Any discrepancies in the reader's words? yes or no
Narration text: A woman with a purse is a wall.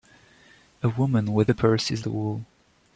no